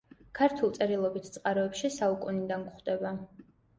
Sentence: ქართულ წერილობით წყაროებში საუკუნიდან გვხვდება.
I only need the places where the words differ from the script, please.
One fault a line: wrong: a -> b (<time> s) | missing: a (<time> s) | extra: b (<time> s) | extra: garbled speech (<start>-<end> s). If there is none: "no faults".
no faults